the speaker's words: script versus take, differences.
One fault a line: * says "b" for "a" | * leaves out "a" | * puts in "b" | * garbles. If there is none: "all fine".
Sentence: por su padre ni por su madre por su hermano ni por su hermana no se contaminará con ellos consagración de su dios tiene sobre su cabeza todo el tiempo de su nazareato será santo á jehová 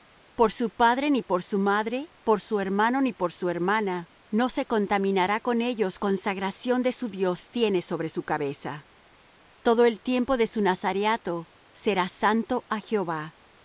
all fine